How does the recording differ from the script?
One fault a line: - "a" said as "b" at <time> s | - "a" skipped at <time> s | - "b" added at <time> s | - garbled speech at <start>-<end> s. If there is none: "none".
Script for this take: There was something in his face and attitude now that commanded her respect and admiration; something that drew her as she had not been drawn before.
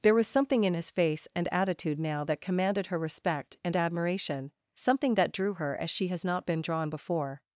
- "had" said as "has" at 6.1 s